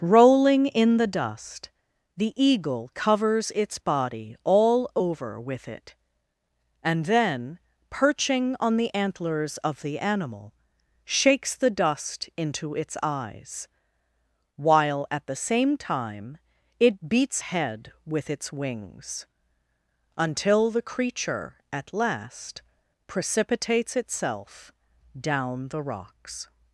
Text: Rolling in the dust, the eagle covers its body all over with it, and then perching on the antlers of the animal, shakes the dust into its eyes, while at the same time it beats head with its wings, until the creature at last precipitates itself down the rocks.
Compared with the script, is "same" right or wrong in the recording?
right